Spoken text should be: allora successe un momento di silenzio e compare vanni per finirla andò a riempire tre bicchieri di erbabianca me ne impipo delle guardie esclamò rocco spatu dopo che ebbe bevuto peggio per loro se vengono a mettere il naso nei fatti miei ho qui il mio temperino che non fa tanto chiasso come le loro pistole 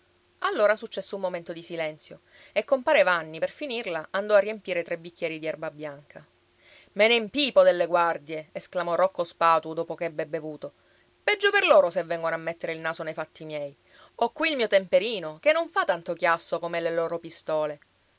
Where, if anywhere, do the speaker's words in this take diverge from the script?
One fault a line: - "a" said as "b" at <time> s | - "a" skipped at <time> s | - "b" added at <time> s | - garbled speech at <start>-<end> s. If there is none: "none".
none